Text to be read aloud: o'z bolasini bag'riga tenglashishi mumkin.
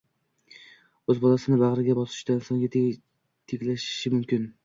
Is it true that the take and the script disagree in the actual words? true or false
true